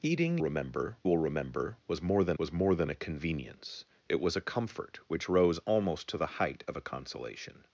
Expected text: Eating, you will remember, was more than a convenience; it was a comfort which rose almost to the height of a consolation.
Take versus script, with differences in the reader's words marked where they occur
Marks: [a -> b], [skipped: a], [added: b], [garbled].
Eating, [you -> remember] will remember, was more than [added: was more than] a convenience; it was a comfort which rose almost to the height of a consolation.